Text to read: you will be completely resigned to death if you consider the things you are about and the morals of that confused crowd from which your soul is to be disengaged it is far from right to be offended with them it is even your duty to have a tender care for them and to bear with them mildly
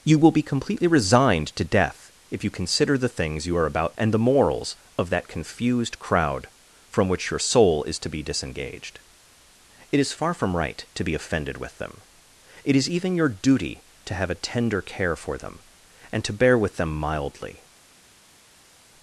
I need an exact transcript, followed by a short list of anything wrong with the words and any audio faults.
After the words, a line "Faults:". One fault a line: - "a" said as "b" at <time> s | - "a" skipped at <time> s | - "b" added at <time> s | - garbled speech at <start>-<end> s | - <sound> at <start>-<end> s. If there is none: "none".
you will be completely resigned to death if you consider the things you are about and the morals of that confused crowd from which your soul is to be disengaged it is far from right to be offended with them it is even your duty to have a tender care for them and to bear with them mildly
Faults:
none